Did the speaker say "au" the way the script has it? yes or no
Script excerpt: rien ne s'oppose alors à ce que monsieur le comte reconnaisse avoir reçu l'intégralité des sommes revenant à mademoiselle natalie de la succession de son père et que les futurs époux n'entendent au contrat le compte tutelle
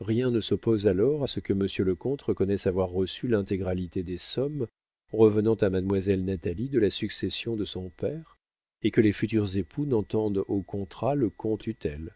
yes